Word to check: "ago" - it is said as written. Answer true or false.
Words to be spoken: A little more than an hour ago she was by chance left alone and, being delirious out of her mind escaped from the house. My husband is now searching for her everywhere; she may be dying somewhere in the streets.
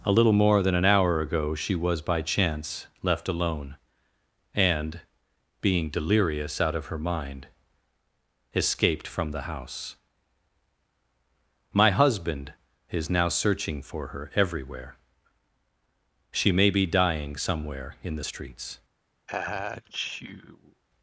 true